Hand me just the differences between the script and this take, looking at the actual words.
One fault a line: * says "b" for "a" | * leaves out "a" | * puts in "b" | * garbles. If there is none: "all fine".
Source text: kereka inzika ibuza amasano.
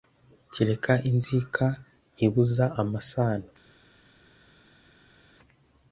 all fine